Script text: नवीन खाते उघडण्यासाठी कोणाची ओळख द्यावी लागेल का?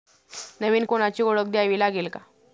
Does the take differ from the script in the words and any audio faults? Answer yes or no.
yes